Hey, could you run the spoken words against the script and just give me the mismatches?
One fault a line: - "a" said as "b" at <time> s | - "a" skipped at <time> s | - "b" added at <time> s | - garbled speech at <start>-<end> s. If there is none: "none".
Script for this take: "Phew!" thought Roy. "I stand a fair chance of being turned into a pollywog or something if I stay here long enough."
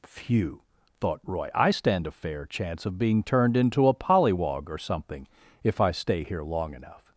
none